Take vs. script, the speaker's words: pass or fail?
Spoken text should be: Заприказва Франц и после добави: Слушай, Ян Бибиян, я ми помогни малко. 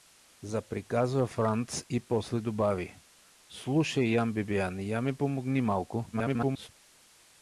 fail